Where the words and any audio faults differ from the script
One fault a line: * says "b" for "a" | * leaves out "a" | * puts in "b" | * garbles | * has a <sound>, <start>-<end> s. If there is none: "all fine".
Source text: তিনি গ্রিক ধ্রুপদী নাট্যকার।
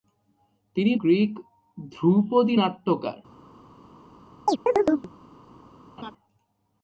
* has a chirp, 4.5-5.1 s
* has a laugh, 6.0-6.1 s